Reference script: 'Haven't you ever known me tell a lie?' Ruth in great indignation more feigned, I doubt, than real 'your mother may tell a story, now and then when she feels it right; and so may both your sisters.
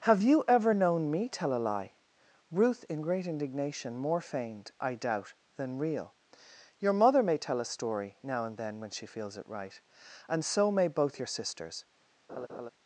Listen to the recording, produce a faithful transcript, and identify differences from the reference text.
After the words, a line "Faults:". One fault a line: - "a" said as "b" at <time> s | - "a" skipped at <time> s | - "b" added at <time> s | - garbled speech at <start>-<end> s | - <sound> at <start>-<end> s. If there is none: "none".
'Have you ever known me tell a lie?' Ruth in great indignation more feigned, I doubt, than real 'your mother may tell a story, now and then when she feels it right; and so may both your sisters.
Faults:
- "Haven't" said as "Have" at 0.1 s
- laugh at 12.3-12.7 s